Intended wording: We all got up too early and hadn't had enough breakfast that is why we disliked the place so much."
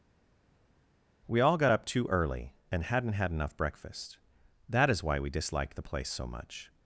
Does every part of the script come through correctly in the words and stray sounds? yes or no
yes